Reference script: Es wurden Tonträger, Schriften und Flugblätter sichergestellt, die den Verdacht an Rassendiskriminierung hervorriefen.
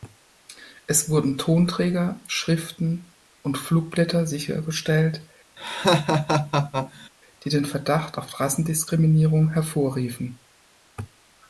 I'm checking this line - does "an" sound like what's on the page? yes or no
no